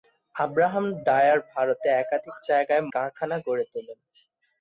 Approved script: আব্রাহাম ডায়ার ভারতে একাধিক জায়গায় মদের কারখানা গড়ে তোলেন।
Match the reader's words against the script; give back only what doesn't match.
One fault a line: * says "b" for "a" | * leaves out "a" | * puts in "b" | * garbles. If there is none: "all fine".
* leaves out "মদের"